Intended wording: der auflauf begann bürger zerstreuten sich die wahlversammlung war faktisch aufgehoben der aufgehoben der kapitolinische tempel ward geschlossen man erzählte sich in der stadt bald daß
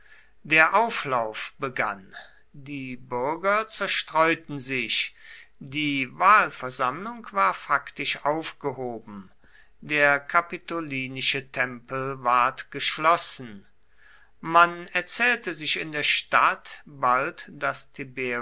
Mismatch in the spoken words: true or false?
true